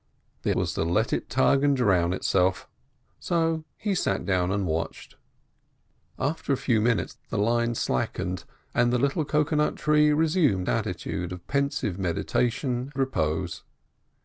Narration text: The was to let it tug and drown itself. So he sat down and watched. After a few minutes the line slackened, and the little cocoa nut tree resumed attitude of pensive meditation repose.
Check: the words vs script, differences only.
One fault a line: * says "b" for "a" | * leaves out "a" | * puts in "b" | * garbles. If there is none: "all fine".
all fine